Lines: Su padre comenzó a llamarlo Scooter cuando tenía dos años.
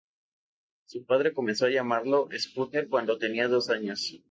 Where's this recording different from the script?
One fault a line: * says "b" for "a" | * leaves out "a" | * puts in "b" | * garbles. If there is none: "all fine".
all fine